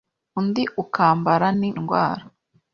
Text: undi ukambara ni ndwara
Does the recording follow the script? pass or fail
pass